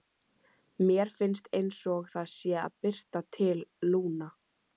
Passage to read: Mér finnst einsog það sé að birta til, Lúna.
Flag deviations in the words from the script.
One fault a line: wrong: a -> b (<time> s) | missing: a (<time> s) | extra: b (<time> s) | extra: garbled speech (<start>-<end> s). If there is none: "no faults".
no faults